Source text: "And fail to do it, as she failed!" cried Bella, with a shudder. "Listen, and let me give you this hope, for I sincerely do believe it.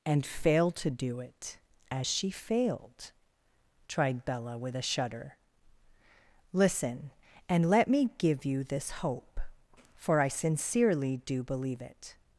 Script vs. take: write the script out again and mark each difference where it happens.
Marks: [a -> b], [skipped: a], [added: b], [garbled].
"And fail to do it, as she failed!" [cried -> tried] Bella, with a shudder. "Listen, and let me give you this hope, for I sincerely do believe it.